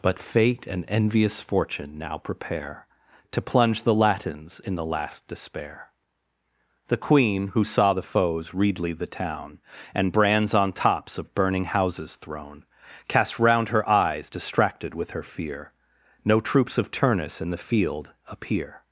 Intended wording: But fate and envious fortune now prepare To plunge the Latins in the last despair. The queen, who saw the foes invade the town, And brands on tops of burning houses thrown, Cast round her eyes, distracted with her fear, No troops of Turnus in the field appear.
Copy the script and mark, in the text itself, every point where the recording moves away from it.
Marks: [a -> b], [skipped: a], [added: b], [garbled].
But fate and envious fortune now prepare To plunge the Latins in the last despair. The queen, who saw the foes [invade -> readly] the town, And brands on tops of burning houses thrown, Cast round her eyes, distracted with her fear, No troops of Turnus in the field appear.